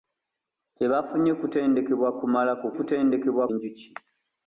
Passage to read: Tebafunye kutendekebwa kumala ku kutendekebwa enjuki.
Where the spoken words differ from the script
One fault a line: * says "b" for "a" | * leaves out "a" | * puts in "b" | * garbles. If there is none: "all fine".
all fine